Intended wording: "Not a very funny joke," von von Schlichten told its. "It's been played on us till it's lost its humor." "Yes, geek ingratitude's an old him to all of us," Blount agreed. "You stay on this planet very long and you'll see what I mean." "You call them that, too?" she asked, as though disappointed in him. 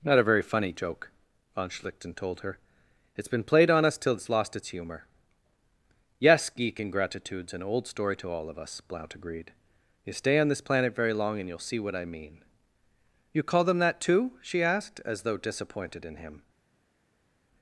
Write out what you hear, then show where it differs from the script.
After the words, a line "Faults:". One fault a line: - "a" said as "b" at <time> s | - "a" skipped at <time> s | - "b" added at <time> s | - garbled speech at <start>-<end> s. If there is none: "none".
"Not a very funny joke," von Schlichten told her. "It's been played on us till it's lost its humor." "Yes, geek ingratitude's an old story to all of us," Blount agreed. "You stay on this planet very long and you'll see what I mean." "You call them that, too?" she asked, as though disappointed in him.
Faults:
- "von" skipped at 1.7 s
- "its" said as "her" at 2.4 s
- "him" said as "story" at 7.9 s